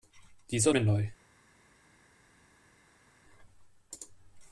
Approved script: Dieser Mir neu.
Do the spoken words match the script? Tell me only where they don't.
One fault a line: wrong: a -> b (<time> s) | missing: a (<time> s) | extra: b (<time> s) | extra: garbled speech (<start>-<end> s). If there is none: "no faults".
no faults